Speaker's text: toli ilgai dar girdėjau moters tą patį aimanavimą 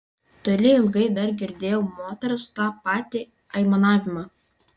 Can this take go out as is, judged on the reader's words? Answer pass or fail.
pass